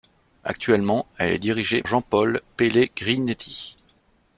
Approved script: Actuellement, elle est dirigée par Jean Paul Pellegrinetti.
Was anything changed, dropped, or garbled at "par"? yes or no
yes